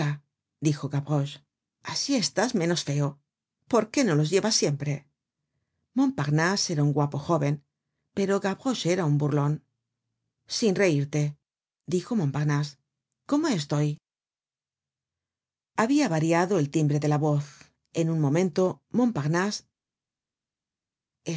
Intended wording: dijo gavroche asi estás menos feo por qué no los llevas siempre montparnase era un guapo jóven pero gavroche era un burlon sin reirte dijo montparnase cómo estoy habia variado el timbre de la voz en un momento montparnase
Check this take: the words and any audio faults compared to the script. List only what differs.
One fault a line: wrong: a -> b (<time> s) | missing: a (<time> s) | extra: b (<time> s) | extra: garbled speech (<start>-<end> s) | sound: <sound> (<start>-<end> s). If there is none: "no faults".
no faults